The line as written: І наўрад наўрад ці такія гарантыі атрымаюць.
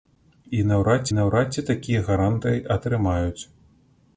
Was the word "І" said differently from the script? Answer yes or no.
no